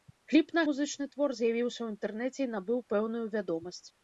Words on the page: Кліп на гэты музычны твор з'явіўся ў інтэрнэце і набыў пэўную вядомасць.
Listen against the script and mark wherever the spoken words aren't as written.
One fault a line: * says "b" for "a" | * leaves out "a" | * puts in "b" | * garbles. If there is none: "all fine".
* leaves out "гэты"